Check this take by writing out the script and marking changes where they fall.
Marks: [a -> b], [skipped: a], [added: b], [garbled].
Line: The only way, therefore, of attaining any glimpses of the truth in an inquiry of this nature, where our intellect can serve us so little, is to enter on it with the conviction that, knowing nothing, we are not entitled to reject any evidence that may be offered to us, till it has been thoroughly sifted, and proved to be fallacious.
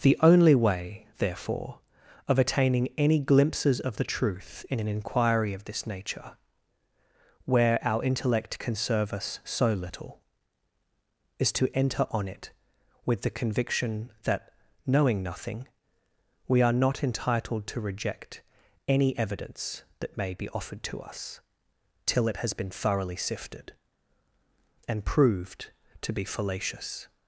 The only way, therefore, of attaining any glimpses of the truth in an inquiry of this nature, where our intellect can serve us so little, is to enter on it with the conviction that, knowing nothing, we are not entitled to reject any evidence that may be offered to us, till it has been thoroughly sifted, and proved to be fallacious.